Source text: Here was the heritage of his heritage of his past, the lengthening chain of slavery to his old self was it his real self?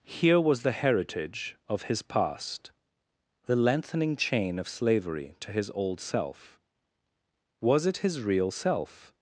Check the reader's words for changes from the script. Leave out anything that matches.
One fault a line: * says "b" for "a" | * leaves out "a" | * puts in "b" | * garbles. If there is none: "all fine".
* leaves out "heritage of his"